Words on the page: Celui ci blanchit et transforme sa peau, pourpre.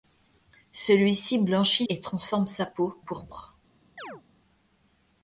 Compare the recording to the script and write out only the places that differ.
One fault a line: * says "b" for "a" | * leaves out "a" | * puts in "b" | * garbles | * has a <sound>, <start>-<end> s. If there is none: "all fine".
* has a chirp, 4.0-4.2 s